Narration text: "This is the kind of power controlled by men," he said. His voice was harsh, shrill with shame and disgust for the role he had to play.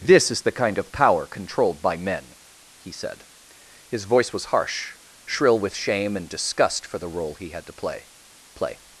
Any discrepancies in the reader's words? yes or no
yes